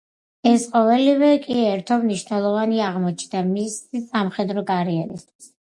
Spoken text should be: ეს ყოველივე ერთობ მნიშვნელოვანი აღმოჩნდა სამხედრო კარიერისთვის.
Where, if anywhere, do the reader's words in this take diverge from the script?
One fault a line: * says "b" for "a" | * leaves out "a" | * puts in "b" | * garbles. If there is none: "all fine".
* puts in "კი"
* puts in "მისი"